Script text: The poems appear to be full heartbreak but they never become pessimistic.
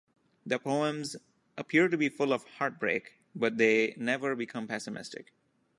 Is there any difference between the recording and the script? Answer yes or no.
yes